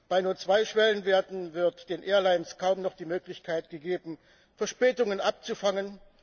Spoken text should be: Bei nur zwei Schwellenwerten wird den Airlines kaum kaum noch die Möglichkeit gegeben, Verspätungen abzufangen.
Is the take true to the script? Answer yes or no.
no